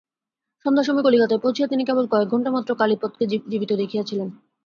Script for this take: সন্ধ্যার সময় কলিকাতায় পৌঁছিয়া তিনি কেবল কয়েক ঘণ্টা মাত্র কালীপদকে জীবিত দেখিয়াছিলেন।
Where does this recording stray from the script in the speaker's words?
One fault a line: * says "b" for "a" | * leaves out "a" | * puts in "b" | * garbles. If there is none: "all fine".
all fine